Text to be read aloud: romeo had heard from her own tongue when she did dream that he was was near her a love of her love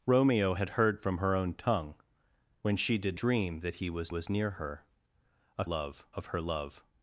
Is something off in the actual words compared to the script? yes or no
no